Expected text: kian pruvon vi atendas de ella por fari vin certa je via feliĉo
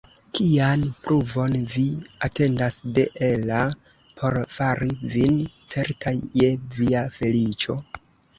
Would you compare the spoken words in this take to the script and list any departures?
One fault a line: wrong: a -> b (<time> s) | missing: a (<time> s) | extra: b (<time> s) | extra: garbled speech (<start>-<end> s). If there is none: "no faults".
no faults